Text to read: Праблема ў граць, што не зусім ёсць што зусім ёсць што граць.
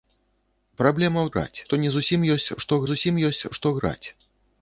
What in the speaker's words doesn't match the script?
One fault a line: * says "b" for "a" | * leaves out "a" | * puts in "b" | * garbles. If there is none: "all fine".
all fine